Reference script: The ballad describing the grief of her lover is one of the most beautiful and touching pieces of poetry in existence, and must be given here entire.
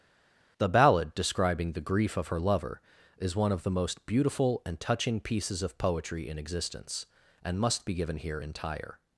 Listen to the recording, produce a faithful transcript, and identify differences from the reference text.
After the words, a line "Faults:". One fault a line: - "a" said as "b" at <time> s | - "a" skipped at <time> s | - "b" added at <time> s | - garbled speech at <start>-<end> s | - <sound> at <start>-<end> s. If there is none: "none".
The ballad describing the grief of her lover is one of the most beautiful and touching pieces of poetry in existence, and must be given here entire.
Faults:
none